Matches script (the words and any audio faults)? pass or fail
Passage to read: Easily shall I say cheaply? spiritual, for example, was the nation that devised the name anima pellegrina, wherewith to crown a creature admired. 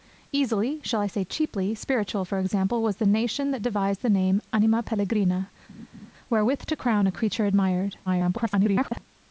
fail